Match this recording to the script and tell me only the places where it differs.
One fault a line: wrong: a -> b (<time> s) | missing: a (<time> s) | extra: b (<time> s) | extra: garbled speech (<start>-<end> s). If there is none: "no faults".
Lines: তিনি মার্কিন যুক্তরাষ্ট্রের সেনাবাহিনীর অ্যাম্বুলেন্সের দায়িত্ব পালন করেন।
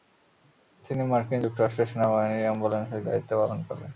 no faults